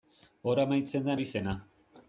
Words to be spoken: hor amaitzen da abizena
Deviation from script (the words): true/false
false